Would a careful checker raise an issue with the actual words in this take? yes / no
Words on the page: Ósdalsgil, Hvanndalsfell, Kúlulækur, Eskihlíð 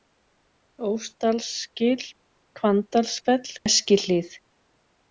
yes